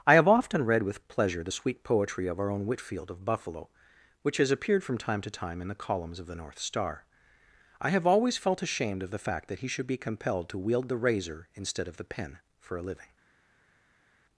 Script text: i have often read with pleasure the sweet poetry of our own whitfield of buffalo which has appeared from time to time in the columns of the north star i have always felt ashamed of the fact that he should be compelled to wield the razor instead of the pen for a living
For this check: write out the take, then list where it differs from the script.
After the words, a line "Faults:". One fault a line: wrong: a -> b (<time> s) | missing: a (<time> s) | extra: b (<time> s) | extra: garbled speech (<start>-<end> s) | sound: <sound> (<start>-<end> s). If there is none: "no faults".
i have often read with pleasure the sweet poetry of our own whitfield of buffalo which has appeared from time to time in the columns of the north star i have always felt ashamed of the fact that he should be compelled to wield the razor instead of the pen for a living
Faults:
no faults